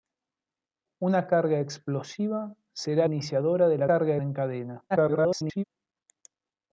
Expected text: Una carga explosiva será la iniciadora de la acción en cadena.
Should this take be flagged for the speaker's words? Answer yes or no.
yes